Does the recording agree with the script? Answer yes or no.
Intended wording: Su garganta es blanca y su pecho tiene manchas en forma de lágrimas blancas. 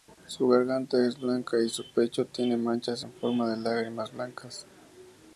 yes